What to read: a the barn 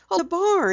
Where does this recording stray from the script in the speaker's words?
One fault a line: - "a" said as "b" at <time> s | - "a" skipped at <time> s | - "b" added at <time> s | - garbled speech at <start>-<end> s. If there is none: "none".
none